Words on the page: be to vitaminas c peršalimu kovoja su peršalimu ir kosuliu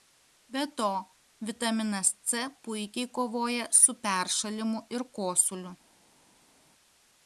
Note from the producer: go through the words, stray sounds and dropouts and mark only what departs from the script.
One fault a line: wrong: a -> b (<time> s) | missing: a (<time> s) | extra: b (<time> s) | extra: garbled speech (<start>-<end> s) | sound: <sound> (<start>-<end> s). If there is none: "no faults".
wrong: peršalimu -> puikiai (2.6 s)